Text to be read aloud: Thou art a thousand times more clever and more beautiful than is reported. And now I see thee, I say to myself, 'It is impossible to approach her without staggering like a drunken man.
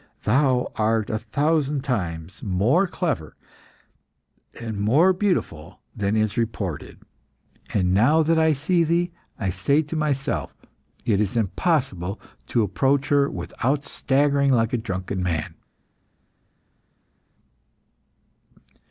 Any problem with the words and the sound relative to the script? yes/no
yes